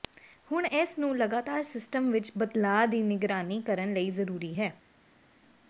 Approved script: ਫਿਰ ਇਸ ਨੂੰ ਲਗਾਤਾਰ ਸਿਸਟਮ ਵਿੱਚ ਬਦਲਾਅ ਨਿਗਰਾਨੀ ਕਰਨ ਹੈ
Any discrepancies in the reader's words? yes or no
yes